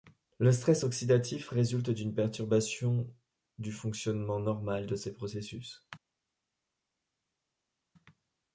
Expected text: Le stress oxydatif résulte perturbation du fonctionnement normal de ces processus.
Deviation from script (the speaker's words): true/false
true